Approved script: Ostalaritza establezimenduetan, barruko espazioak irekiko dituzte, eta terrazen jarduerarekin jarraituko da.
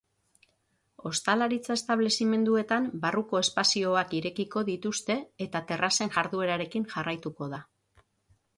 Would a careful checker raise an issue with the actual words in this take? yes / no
no